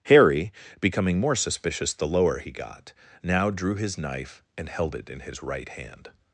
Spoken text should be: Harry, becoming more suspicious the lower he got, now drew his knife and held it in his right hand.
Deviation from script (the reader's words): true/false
false